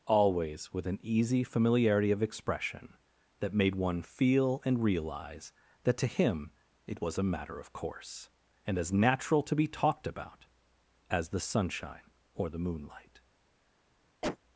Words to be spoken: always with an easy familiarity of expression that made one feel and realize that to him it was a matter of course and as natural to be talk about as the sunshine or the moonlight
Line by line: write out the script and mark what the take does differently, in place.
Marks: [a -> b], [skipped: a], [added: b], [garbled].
always with an easy familiarity of expression that made one feel and realize that to him it was a matter of course and as natural to be [talk -> talked] about as the sunshine or the moonlight